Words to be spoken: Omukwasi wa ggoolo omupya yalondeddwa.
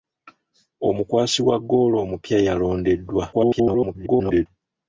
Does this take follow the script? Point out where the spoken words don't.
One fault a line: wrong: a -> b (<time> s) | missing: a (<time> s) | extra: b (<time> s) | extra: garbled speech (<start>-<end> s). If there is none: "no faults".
extra: garbled speech (3.3-4.5 s)